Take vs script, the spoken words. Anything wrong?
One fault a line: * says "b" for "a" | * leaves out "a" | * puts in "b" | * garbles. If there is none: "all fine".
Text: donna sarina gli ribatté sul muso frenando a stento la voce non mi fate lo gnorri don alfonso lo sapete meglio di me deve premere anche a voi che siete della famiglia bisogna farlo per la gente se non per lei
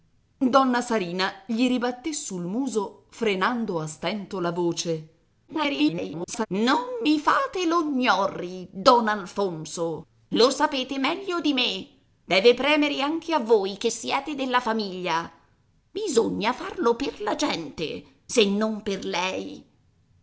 * garbles